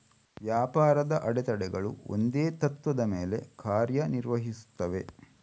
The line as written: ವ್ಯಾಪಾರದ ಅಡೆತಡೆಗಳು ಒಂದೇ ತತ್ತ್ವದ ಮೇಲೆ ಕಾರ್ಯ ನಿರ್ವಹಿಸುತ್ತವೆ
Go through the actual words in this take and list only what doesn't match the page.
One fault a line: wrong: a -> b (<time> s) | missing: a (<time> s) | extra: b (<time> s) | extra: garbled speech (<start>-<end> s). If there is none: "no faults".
no faults